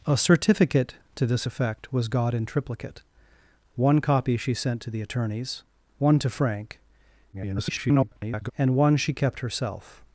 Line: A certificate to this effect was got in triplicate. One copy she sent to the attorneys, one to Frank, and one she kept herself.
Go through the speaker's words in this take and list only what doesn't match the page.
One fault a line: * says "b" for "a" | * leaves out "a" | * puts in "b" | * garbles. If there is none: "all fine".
* garbles